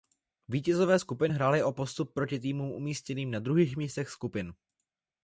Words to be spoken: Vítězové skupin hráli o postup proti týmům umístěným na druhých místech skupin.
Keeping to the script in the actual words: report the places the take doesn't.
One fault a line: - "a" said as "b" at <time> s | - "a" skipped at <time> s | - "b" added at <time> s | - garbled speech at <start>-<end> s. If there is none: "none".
none